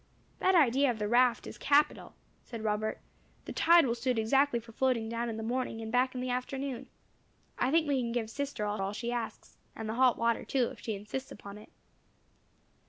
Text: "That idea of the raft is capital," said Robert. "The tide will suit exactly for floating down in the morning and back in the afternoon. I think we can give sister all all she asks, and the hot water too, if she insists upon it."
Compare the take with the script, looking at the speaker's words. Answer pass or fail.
pass